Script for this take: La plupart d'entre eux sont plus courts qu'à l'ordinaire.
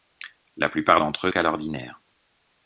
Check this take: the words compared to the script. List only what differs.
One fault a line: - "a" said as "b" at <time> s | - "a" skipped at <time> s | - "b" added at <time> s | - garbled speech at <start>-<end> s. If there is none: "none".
- "sont plus courts" skipped at 1.3 s